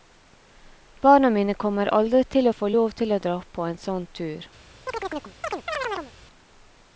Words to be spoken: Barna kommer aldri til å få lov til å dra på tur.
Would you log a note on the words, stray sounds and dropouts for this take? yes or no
yes